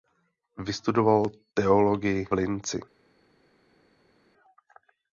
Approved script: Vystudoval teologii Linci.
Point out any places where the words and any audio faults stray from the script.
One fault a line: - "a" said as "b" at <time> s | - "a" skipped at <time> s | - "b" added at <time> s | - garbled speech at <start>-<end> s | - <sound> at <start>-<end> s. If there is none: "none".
none